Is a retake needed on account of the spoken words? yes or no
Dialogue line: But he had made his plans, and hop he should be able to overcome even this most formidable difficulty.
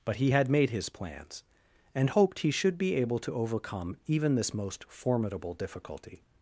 yes